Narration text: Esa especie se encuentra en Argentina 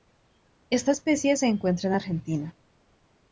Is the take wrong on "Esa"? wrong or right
wrong